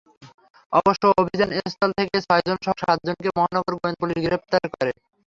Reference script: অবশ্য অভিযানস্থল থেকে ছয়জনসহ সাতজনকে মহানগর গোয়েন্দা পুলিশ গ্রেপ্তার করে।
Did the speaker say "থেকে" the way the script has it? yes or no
yes